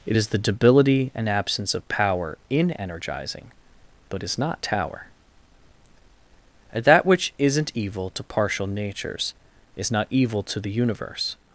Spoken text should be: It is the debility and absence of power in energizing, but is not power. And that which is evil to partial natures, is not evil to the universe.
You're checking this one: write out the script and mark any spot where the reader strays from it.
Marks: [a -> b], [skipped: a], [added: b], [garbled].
It is the debility and absence of power in energizing, but is not [power. -> tower] And that which [is -> isn't] evil to partial natures, is not evil to the universe.